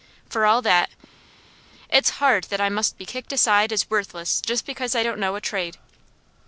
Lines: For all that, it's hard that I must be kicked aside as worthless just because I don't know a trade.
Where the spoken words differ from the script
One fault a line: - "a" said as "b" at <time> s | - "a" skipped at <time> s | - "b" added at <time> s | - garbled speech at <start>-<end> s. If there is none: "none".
none